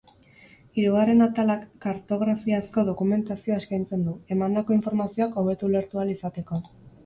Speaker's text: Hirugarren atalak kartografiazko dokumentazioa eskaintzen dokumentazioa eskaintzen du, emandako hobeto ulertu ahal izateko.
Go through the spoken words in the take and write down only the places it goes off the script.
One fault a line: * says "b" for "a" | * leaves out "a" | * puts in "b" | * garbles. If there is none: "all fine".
* leaves out "dokumentazioa eskaintzen"
* puts in "informazioak"